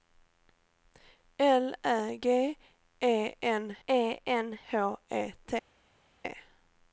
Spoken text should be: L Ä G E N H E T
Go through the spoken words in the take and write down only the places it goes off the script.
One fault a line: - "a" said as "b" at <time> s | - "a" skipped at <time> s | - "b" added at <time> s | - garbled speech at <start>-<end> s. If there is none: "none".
- "E N" added at 3.9 s